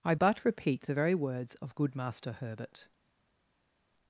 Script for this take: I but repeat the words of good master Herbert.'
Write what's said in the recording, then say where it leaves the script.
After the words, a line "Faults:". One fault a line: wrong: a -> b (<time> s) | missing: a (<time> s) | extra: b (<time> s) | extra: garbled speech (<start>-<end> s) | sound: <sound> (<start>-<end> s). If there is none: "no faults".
I but repeat the very words of good master Herbert.'
Faults:
extra: very (0.9 s)